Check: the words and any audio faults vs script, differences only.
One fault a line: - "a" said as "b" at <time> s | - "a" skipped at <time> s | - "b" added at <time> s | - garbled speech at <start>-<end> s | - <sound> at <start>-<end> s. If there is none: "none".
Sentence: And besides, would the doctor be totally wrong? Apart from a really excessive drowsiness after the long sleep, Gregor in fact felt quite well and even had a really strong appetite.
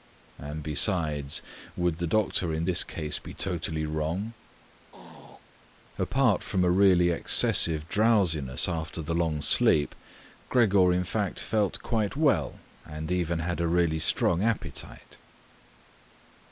- "in this case" added at 2.5 s
- throat clearing at 4.9-5.4 s